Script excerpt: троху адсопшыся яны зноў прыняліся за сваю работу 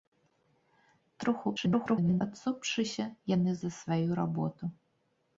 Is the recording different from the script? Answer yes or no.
yes